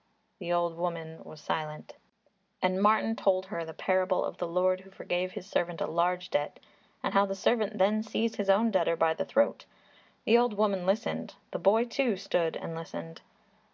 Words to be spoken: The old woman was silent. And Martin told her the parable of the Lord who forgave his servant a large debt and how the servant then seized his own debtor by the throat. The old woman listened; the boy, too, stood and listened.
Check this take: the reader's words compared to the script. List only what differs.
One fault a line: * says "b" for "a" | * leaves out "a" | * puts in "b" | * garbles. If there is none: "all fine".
all fine